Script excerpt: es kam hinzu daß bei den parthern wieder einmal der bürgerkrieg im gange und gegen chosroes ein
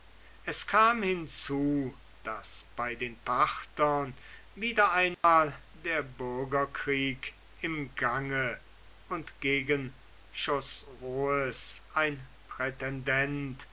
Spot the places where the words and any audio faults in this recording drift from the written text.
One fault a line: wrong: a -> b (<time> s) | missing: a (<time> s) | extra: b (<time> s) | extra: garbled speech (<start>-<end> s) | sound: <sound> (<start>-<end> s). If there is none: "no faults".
sound: dropout (5.1-5.2 s)